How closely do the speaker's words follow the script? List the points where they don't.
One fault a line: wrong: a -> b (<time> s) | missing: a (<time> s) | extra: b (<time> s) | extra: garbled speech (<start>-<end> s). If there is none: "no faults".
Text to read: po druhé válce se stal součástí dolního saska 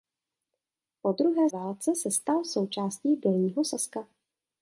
no faults